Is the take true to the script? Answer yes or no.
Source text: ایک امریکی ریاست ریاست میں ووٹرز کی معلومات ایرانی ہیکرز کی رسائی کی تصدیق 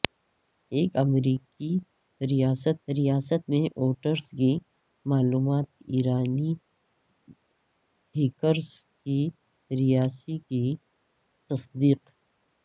yes